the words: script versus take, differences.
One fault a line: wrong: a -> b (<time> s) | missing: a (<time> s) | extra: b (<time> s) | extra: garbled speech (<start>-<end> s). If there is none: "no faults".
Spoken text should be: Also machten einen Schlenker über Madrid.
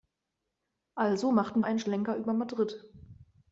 no faults